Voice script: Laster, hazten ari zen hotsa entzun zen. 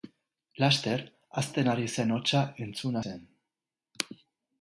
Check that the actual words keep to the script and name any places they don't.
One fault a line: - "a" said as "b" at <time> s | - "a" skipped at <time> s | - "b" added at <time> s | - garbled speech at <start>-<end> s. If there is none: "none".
none